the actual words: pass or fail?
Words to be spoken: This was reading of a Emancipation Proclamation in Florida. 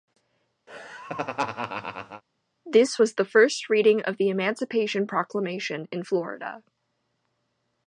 fail